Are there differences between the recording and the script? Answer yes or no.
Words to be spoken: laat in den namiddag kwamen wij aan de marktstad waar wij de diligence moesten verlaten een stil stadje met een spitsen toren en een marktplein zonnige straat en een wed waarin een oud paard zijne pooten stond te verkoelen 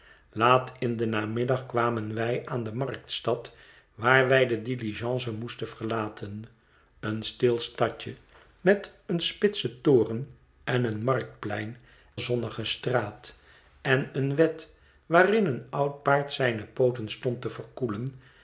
no